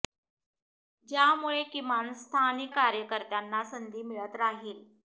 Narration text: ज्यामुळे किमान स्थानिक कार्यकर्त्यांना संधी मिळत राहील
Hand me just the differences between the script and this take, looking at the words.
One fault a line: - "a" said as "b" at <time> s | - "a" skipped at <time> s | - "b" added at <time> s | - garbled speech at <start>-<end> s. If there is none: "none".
none